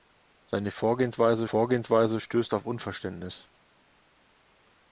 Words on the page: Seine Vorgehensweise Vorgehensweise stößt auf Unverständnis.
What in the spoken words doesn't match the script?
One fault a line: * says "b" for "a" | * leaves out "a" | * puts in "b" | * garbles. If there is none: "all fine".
all fine